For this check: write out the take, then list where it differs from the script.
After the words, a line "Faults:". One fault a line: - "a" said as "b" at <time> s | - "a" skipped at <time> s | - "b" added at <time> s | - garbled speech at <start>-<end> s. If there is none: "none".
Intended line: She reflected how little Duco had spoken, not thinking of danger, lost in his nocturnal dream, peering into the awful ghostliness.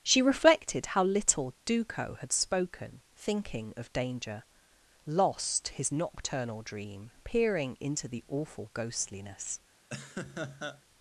She reflected how little Duco had spoken, thinking of danger, lost his nocturnal dream, peering into the awful ghostliness.
Faults:
- "not" skipped at 3.0 s
- "in" skipped at 5.7 s